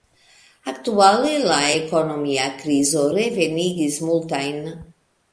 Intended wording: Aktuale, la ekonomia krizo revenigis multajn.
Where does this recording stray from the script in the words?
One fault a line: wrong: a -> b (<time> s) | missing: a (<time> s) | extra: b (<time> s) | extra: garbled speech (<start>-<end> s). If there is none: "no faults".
no faults